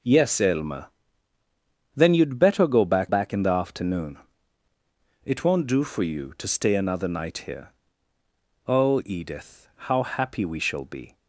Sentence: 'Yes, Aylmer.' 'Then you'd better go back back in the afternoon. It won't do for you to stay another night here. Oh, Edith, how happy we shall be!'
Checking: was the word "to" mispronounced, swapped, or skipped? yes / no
no